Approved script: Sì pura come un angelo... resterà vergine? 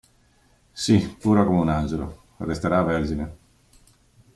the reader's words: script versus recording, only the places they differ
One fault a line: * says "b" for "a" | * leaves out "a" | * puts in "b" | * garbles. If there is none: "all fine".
all fine